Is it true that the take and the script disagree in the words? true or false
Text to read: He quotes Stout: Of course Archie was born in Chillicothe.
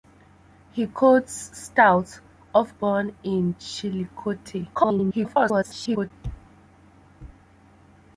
true